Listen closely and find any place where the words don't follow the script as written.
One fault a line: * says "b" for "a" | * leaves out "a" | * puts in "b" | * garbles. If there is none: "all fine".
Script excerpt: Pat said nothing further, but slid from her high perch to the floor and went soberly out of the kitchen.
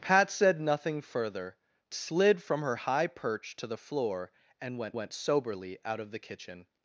* leaves out "but"
* puts in "went"